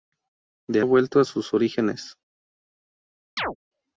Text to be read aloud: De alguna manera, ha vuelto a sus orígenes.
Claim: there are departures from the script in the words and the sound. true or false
true